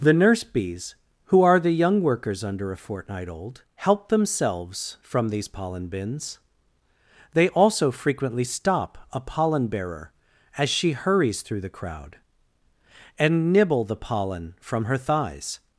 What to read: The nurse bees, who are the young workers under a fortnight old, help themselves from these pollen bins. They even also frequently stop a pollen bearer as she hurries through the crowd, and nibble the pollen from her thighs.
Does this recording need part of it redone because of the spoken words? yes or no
yes